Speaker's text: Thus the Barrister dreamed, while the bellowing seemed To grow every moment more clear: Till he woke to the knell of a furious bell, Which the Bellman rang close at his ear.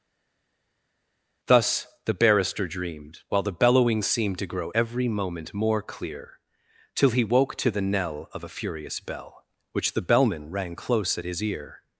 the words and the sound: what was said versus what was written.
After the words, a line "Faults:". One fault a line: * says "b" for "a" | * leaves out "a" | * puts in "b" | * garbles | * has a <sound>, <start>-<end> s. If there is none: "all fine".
Thus the Barrister dreamed, while the bellowing seemed To grow every moment more clear: Till he woke to the knell of a furious bell, Which the Bellman rang close at his ear.
Faults:
all fine